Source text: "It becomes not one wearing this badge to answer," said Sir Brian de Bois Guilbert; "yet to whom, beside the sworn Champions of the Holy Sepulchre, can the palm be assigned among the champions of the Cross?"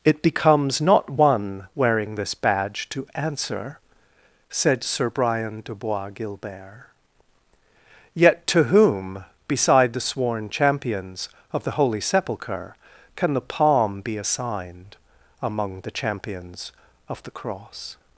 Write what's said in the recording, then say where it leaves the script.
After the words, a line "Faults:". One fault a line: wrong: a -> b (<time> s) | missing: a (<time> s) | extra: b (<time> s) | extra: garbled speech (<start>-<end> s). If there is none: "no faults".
"It becomes not one wearing this badge to answer," said Sir Brian de Bois Guilbert; "yet to whom, beside the sworn Champions of the Holy Sepulchre, can the palm be assigned among the champions of the Cross?"
Faults:
no faults